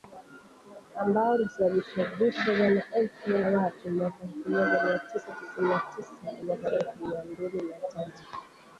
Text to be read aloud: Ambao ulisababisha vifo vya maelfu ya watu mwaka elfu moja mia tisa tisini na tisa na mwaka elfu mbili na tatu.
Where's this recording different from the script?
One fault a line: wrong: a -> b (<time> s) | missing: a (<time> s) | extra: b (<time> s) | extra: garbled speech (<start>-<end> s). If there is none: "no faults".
no faults